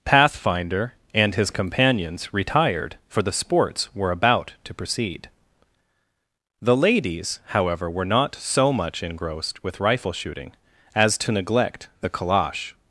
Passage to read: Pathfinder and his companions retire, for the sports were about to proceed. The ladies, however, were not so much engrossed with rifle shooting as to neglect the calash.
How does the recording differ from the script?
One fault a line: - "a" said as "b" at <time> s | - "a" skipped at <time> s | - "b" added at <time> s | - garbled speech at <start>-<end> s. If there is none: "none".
- "retire" said as "retired" at 2.3 s